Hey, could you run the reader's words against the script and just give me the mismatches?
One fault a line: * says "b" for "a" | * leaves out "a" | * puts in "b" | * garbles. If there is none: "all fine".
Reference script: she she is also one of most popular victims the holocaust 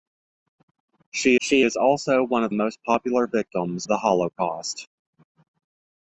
all fine